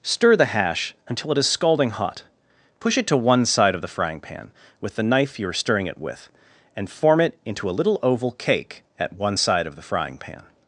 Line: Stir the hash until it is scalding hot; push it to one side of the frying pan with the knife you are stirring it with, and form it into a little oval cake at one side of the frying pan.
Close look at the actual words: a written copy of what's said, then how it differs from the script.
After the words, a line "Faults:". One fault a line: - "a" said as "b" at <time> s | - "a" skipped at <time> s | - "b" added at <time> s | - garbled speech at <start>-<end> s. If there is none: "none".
Stir the hash until it is scalding hot; push it to one side of the frying pan with the knife you are stirring it with, and form it into a little oval cake at one side of the frying pan.
Faults:
none